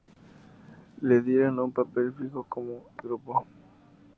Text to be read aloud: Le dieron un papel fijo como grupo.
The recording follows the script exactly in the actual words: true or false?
true